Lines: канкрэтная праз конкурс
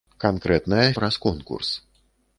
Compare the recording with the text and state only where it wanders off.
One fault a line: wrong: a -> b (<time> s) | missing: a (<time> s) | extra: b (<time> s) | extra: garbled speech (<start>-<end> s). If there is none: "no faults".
no faults